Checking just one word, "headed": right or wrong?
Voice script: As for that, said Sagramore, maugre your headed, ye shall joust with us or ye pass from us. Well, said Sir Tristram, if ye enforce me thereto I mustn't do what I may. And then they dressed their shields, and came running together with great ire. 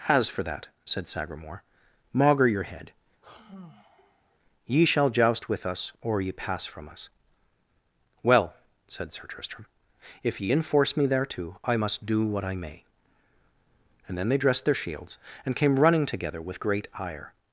wrong